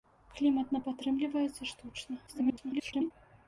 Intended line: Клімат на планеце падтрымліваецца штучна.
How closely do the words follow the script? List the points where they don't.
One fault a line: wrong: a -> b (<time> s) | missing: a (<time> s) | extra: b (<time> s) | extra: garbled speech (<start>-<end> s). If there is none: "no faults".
missing: планеце (0.8 s)
extra: garbled speech (2.3-3.1 s)